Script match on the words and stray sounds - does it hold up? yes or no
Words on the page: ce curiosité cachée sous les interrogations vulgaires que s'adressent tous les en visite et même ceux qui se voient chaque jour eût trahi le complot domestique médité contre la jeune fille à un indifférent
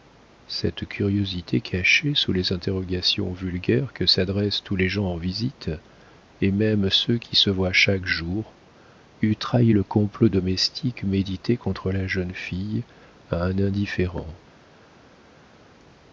no